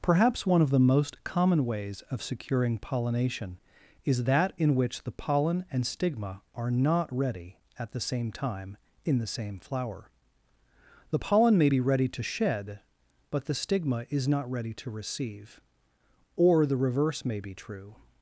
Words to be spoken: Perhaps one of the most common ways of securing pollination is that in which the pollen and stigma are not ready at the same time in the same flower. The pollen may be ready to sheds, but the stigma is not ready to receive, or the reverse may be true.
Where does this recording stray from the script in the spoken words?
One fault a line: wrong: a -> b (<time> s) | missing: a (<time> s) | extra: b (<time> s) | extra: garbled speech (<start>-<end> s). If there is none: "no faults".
wrong: sheds -> shed (12.2 s)